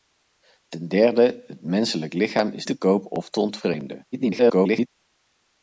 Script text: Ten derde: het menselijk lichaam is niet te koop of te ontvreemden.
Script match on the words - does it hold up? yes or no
no